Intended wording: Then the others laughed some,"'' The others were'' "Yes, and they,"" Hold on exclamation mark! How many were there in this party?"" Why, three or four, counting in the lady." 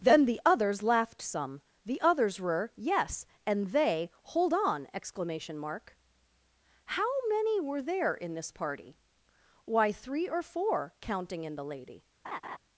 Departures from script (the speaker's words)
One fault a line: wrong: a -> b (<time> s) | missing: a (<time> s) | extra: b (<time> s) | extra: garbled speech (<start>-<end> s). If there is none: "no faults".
no faults